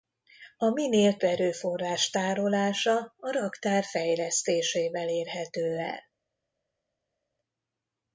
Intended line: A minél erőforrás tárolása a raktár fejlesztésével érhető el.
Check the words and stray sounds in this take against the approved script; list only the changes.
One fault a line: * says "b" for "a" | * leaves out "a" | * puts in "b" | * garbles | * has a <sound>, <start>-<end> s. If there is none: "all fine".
all fine